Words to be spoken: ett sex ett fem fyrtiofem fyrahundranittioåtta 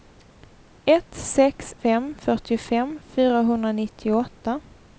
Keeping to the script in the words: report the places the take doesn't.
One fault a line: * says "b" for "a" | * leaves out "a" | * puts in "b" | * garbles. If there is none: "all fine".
* leaves out "ett"